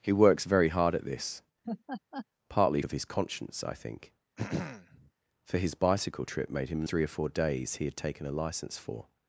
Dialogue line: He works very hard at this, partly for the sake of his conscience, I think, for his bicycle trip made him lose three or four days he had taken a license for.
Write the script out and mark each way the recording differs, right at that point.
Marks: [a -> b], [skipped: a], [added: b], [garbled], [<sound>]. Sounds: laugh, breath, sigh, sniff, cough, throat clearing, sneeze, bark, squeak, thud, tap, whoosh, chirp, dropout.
He works very hard at this, [laugh] partly [skipped: for the sake] of his conscience, I think, [throat clearing] for his bicycle trip made him [skipped: lose] three or four days he had taken a license for.